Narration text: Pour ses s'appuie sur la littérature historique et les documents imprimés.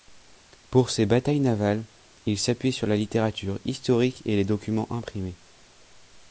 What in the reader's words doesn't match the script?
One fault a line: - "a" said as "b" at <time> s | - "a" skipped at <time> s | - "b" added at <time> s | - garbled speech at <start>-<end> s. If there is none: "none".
- "batailles navales il" added at 1.1 s